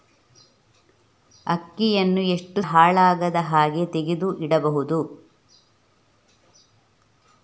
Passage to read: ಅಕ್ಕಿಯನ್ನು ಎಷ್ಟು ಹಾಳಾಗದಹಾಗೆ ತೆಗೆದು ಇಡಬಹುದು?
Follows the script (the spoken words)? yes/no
yes